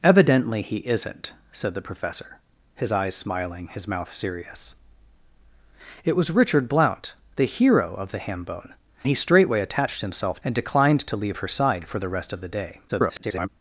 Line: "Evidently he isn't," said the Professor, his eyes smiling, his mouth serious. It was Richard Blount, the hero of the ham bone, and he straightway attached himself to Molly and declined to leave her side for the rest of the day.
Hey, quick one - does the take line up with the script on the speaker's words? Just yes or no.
no